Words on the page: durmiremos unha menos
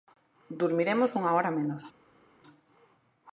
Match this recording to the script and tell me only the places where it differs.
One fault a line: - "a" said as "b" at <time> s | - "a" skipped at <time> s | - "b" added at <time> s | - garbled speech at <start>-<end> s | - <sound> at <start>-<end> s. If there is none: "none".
- "hora" added at 1.4 s